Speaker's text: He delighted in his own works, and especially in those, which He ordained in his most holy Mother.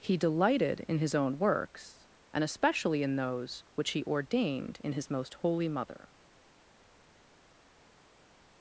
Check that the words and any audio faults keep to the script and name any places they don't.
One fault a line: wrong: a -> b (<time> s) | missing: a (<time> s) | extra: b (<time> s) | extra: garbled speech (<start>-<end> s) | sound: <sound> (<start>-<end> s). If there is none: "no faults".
no faults